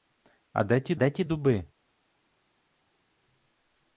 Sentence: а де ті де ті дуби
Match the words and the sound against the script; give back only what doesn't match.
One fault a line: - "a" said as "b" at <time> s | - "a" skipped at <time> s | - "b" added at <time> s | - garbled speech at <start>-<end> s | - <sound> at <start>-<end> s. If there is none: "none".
none